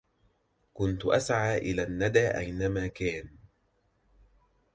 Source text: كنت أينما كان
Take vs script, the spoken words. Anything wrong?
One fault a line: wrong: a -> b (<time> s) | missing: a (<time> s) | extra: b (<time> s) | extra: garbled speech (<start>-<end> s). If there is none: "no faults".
extra: أسعى إلى الندى (1.1 s)